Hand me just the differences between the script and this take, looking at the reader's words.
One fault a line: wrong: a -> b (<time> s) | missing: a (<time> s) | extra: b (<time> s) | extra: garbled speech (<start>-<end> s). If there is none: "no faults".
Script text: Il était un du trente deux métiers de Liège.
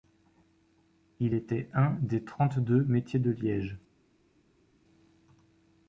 wrong: du -> des (2.0 s)